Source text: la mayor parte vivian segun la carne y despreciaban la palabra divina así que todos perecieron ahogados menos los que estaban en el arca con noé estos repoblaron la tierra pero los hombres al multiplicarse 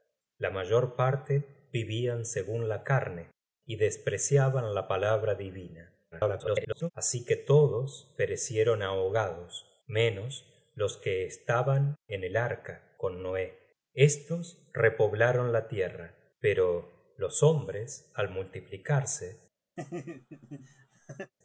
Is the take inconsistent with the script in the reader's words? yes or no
yes